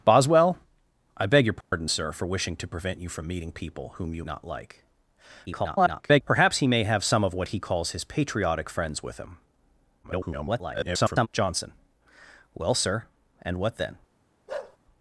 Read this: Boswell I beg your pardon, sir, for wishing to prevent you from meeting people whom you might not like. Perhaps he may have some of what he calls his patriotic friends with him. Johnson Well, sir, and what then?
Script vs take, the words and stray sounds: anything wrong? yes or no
yes